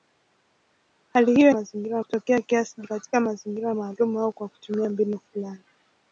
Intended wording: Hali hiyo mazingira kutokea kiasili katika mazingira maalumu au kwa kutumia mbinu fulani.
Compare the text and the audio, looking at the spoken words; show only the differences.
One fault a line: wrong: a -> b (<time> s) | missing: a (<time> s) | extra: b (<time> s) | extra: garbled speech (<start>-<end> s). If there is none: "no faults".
no faults